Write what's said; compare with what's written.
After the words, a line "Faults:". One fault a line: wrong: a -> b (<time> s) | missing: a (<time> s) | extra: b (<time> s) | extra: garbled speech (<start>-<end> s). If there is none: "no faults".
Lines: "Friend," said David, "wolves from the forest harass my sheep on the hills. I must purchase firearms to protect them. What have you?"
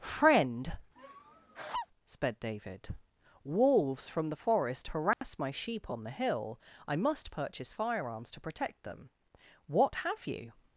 "Friend," sped David, "wolves from the forest harass my sheep on the hill. I must purchase firearms to protect them. What have you?"
Faults:
wrong: said -> sped (2.0 s)
wrong: hills -> hill (6.1 s)